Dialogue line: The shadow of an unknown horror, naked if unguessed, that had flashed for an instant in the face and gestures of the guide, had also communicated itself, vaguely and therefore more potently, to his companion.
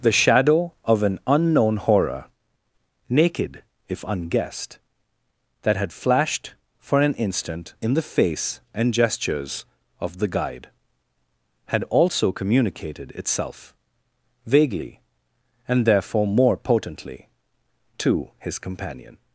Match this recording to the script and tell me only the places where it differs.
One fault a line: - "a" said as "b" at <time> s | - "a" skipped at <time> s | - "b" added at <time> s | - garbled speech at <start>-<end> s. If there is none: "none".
none